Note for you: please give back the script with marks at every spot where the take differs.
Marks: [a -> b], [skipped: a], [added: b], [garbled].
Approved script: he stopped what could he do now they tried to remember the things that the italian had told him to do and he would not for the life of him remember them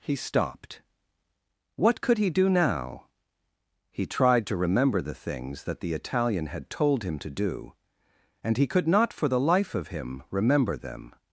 he stopped what could he do now [they -> he] tried to remember the things that the italian had told him to do and he [would -> could] not for the life of him remember them